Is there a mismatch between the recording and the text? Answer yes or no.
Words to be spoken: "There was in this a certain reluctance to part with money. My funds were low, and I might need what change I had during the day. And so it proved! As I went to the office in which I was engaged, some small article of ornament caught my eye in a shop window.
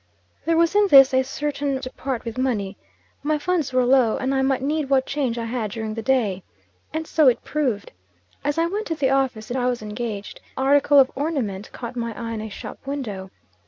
yes